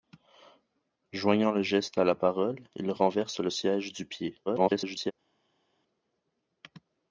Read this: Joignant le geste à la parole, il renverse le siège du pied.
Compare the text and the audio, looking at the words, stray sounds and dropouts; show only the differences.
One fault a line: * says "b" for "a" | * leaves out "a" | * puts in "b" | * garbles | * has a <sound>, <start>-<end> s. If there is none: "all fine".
* garbles